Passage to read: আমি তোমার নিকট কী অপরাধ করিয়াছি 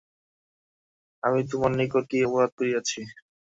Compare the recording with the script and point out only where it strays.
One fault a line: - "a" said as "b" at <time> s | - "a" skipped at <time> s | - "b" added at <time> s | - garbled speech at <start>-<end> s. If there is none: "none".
none